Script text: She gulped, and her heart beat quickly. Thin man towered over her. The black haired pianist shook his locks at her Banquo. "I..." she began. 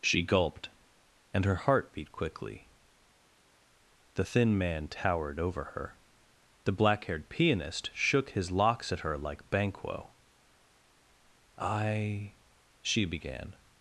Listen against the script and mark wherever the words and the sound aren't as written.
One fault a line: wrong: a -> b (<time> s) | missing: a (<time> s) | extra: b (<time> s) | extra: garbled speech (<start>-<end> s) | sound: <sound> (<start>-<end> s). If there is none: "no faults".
extra: The (4.1 s)
extra: like (9.2 s)